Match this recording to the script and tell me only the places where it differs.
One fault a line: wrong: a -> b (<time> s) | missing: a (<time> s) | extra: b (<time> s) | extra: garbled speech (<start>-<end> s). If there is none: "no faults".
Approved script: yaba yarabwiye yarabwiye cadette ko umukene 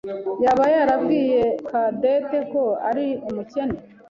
missing: yarabwiye (1.4 s)
extra: ari (2.9 s)